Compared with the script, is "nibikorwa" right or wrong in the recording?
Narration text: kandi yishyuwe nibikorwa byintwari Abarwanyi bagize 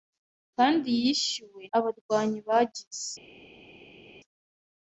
wrong